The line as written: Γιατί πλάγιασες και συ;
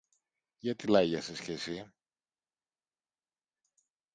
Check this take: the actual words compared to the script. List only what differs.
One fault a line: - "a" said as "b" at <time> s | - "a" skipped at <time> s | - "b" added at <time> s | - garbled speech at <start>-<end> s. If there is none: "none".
none